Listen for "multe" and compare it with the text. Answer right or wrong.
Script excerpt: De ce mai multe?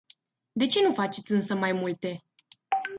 right